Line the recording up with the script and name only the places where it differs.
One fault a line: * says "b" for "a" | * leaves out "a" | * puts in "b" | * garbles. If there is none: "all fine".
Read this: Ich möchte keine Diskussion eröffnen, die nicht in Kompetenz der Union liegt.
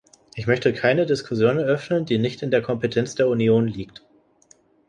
* puts in "der"